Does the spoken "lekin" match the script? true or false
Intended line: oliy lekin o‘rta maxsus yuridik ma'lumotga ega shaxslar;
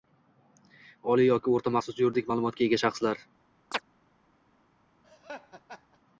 false